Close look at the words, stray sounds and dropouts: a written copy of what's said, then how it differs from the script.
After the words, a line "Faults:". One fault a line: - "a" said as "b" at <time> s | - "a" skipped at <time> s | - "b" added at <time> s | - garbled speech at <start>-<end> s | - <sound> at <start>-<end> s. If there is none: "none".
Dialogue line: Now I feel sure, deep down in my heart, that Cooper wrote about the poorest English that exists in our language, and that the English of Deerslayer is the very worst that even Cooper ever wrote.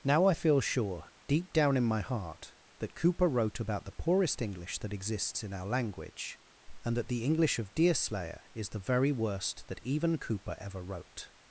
Now I feel sure, deep down in my heart, that Cooper wrote about the poorest English that exists in our language, and that the English of Deerslayer is the very worst that even Cooper ever wrote.
Faults:
none